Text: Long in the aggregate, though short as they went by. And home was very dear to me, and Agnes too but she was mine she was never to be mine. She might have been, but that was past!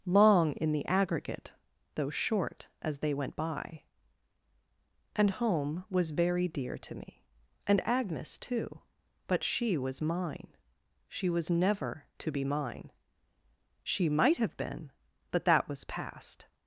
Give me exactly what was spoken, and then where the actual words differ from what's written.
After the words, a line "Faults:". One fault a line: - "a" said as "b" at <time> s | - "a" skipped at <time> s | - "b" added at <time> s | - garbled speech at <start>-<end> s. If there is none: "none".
Long in the aggregate, though short as they went by. And home was very dear to me, and Agnes too but she was mine she was never to be mine. She might have been, but that was past!
Faults:
none